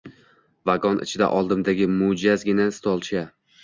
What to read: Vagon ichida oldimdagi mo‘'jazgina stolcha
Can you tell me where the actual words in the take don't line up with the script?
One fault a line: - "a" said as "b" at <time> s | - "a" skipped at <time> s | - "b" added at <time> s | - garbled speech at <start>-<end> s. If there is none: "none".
none